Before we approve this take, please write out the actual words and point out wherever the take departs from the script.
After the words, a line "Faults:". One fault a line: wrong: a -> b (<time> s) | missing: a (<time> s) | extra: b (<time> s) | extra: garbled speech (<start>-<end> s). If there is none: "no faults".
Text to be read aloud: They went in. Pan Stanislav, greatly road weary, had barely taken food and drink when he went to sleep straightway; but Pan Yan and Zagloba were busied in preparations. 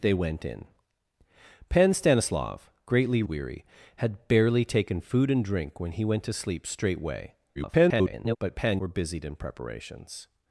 They went in. Pan Stanislav, greatly weary, had barely taken food and drink when he went to sleep straightway; [garbled] but Pan Were busied in preparations.
Faults:
missing: road (3.2 s)
extra: garbled speech (7.5-8.4 s)
missing: Yan and Zagloba (8.8 s)